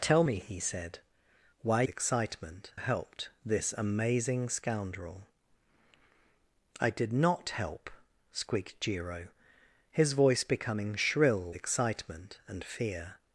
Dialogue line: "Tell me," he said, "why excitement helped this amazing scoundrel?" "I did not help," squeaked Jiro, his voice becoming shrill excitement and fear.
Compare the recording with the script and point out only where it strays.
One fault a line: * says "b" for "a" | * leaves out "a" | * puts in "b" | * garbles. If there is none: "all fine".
all fine